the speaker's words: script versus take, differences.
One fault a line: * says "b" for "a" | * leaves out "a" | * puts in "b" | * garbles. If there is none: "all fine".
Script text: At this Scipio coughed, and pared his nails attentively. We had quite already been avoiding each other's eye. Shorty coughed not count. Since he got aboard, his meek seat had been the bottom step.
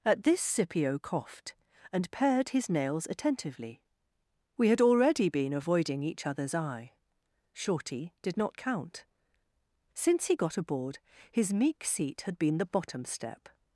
* leaves out "quite"
* says "did" for "coughed"